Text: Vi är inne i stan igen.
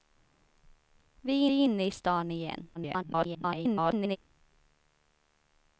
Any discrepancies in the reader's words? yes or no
yes